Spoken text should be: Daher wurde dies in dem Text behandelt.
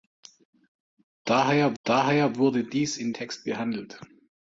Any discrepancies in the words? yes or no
yes